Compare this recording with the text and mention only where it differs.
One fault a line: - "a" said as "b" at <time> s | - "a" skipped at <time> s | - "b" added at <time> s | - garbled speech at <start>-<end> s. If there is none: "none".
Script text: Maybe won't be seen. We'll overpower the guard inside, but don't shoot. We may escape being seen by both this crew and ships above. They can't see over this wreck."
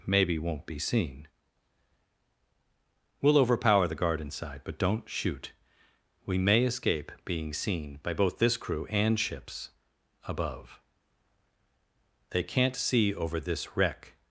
none